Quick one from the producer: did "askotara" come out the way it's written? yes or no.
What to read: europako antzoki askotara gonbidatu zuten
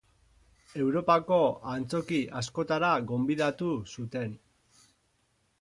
yes